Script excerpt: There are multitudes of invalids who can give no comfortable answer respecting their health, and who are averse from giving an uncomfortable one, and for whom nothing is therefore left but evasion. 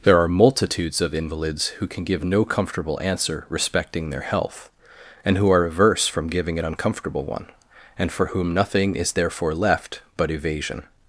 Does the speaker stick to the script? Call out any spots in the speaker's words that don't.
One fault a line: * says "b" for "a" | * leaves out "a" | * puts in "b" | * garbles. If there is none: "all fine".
all fine